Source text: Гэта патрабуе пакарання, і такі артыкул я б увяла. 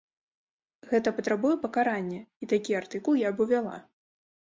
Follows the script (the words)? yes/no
yes